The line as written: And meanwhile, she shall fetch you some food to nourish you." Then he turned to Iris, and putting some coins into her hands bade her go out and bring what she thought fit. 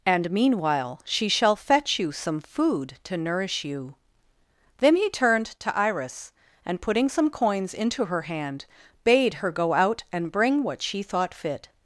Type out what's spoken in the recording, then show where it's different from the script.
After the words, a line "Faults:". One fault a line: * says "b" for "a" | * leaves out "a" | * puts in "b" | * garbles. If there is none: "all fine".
And meanwhile, she shall fetch you some food to nourish you." Then he turned to Iris, and putting some coins into her hand bade her go out and bring what she thought fit.
Faults:
* says "hand" for "hands"